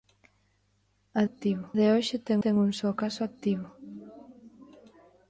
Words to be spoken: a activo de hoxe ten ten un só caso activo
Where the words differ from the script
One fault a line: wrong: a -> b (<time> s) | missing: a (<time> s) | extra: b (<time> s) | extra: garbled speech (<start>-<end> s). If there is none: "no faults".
no faults